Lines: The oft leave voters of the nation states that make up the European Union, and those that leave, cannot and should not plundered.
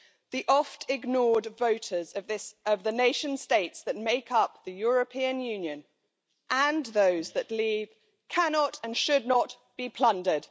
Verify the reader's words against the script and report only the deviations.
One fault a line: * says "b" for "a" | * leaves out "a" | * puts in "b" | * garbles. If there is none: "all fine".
* says "ignored" for "leave"
* puts in "be"